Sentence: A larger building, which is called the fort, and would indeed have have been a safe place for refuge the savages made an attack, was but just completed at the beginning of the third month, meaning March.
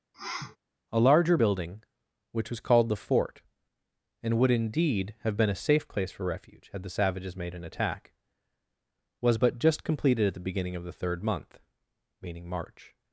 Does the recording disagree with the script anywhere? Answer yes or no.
yes